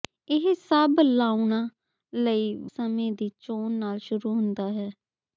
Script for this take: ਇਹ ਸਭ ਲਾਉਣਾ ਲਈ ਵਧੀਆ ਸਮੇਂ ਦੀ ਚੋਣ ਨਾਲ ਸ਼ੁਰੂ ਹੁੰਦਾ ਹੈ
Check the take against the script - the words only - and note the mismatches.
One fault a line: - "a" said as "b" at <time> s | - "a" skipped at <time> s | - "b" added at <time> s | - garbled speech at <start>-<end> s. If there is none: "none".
- "ਵਧੀਆ" skipped at 2.5 s